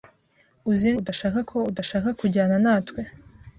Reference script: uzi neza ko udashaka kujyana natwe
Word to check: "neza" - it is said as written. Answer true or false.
false